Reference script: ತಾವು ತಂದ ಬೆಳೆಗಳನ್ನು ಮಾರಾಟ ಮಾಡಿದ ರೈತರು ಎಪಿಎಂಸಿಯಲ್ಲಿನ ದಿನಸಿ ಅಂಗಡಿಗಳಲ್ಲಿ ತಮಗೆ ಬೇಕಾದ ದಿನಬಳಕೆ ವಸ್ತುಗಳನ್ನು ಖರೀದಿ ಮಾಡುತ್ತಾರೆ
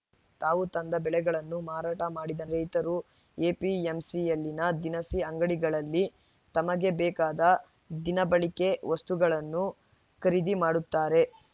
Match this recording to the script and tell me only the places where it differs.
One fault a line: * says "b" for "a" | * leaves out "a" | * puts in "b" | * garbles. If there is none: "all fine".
all fine